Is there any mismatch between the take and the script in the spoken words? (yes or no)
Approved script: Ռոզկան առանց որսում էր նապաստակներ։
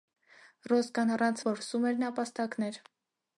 no